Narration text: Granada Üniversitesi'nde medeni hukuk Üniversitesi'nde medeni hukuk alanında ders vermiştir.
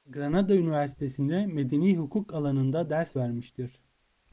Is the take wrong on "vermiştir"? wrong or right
right